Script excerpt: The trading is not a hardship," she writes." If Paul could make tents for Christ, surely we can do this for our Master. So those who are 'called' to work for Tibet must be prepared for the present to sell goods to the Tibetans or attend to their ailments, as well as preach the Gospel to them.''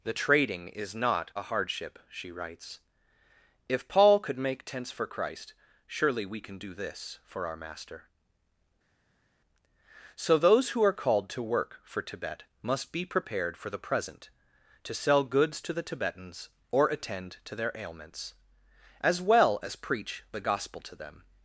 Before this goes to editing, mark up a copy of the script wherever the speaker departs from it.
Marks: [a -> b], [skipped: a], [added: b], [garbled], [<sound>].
The trading is not a hardship," she writes." If Paul could make tents for Christ, surely we can do this for our Master. So those who are 'called' to work for Tibet must be prepared for the present to sell goods to the Tibetans or attend to their ailments, as well as preach the Gospel to them.''